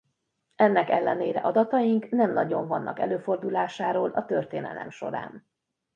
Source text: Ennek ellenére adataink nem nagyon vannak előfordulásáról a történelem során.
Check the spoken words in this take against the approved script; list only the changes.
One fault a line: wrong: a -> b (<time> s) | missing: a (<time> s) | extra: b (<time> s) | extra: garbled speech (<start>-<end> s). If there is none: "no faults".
no faults